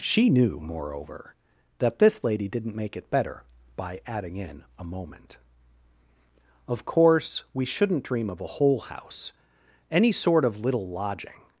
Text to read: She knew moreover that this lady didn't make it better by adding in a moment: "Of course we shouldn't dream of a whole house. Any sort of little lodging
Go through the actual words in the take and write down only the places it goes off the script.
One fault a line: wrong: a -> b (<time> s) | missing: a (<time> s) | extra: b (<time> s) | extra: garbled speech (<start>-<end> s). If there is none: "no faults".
no faults